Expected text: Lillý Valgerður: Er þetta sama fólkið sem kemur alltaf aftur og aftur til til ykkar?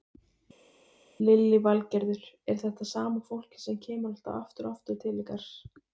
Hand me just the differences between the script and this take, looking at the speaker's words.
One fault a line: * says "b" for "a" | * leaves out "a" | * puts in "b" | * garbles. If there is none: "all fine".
* leaves out "til"